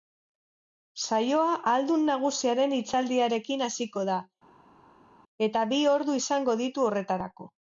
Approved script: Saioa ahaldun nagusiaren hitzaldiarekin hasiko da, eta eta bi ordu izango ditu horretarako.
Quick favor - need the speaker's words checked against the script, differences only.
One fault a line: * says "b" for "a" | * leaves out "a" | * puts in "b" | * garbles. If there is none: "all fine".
* leaves out "eta"